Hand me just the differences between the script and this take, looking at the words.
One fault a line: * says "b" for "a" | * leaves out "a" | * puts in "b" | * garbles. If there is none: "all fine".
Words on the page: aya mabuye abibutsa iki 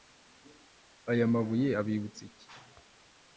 all fine